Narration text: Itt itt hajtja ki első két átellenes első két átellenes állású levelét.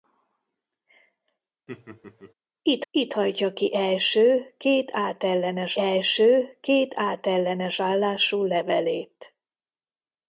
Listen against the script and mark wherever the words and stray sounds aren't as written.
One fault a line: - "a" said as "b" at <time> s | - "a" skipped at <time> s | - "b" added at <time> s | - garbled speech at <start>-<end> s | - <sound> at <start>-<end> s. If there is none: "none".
- laugh at 1.7-2.3 s